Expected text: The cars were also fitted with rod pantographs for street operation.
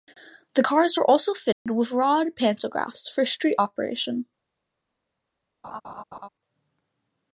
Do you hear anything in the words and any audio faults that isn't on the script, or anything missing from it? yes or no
yes